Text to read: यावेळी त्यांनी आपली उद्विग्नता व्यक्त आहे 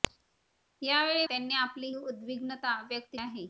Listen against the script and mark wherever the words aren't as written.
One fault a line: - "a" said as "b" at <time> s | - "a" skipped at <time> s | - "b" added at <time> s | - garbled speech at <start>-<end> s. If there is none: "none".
none